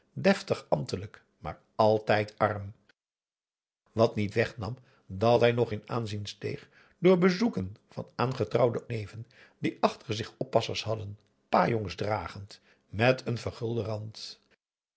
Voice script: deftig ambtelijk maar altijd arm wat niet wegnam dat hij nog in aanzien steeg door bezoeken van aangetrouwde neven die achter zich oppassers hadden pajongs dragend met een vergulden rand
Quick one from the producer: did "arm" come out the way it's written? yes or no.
yes